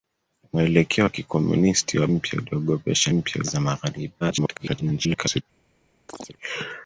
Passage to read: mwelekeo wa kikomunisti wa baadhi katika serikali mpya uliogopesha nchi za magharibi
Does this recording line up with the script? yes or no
no